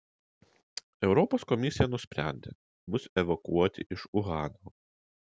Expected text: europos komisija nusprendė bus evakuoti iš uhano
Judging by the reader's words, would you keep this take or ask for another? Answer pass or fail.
pass